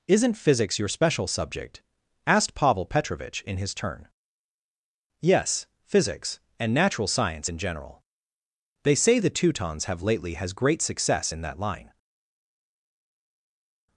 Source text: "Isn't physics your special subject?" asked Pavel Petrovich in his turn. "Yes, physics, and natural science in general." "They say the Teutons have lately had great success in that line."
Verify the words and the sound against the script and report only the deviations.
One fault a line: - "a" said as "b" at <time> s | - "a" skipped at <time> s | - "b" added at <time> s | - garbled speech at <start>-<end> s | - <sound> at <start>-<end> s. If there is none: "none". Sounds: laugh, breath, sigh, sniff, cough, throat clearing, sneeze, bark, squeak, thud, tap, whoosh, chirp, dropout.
- "had" said as "has" at 10.3 s